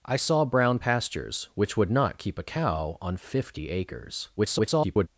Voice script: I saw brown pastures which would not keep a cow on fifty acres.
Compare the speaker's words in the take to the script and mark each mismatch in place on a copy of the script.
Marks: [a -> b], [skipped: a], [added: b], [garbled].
I saw brown pastures which would not keep a cow on fifty acres. [garbled]